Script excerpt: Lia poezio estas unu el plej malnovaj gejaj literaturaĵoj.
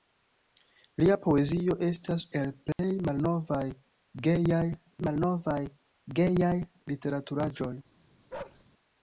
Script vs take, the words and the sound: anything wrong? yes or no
yes